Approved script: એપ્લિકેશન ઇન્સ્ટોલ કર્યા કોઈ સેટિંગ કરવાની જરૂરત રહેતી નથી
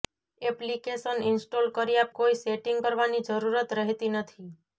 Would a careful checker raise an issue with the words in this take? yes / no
no